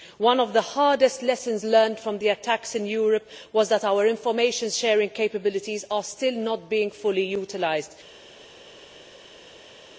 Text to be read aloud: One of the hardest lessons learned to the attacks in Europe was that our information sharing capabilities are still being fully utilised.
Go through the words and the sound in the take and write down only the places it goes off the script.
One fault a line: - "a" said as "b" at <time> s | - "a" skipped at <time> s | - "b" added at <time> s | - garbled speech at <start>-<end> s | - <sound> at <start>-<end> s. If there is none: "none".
- "to" said as "from" at 2.0 s
- "not" added at 6.3 s